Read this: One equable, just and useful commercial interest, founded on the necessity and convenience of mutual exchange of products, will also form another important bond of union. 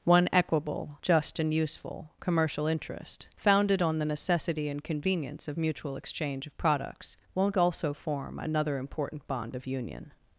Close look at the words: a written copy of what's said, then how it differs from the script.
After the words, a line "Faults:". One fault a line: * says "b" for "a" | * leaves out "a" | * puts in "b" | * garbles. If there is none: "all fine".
One equable, just and useful commercial interest, founded on the necessity and convenience of mutual exchange of products, won't also form another important bond of union.
Faults:
* says "won't" for "will"